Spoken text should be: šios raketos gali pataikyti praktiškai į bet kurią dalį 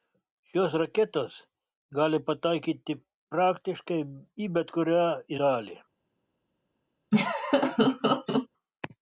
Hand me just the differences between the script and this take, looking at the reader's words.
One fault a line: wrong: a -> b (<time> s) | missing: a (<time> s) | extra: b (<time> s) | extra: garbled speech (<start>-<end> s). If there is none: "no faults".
no faults